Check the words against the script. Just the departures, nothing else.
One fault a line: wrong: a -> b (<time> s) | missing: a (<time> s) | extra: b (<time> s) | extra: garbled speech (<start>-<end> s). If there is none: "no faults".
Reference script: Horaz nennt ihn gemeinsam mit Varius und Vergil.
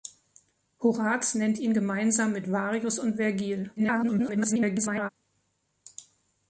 extra: garbled speech (3.8-5.1 s)